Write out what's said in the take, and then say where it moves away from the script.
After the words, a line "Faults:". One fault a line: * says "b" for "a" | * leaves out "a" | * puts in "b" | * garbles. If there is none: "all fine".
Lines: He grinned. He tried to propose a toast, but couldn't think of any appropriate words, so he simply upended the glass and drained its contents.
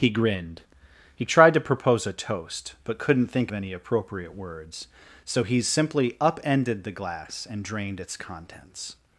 He grinned. He tried to propose a toast, but couldn't think any appropriate words, so he simply upended the glass and drained its contents.
Faults:
* leaves out "of"